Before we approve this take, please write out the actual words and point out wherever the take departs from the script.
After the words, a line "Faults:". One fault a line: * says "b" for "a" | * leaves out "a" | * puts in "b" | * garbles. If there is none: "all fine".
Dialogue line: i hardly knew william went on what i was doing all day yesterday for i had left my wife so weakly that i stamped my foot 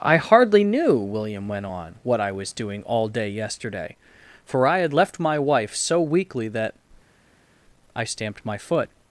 i hardly knew william went on what i was doing all day yesterday for i had left my wife so weakly that i stamped my foot
Faults:
all fine